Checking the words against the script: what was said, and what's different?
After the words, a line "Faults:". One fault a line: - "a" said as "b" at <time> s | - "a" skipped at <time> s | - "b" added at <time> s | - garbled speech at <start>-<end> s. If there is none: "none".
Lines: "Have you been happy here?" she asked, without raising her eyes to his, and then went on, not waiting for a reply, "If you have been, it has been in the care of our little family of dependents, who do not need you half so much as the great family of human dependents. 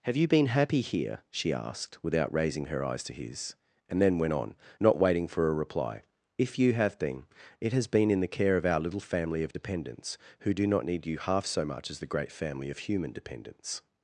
"Have you been happy here?" she asked, without raising her eyes to his, and then went on, not waiting for a reply, "If you have been, it has been in the care of our little family of dependents, who do not need you half so much as the great family of human dependents.
Faults:
none